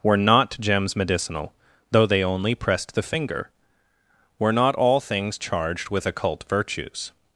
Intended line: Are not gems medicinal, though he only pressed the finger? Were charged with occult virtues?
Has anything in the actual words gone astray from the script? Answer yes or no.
yes